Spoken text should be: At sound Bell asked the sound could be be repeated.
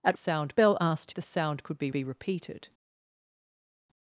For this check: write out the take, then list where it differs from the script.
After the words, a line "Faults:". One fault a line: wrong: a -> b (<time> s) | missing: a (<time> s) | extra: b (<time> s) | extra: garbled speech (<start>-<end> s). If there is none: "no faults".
At sound Bell asked the sound could be be repeated.
Faults:
no faults